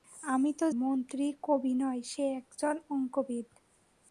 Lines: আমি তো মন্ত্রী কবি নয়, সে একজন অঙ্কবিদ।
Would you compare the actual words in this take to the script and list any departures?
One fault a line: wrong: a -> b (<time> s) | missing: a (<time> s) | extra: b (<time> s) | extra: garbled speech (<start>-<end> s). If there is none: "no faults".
no faults